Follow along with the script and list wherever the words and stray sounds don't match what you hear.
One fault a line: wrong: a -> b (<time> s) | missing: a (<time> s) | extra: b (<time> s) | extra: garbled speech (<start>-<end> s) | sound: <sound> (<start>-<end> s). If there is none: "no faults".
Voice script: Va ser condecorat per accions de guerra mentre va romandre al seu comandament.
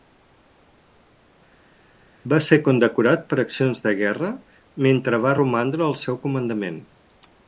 no faults